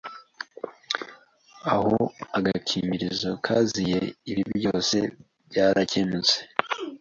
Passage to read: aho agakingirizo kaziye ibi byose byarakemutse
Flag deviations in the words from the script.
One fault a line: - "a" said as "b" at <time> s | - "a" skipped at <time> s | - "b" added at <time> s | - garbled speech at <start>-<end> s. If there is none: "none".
none